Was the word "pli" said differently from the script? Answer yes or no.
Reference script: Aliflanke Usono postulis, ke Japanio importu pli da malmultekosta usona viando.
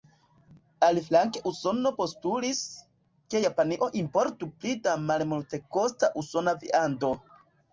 no